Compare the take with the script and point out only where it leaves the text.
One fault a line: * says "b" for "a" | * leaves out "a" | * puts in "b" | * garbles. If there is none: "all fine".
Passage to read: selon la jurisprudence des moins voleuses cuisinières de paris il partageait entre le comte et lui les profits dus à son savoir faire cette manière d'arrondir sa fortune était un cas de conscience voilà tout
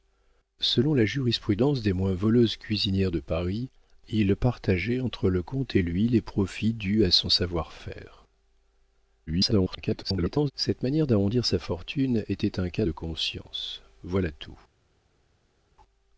* garbles